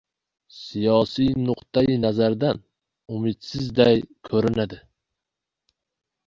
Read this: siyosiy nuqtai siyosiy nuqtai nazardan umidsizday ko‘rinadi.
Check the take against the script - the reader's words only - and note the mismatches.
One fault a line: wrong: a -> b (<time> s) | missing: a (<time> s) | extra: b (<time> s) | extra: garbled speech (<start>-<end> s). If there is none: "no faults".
missing: siyosiy nuqtai (2.0 s)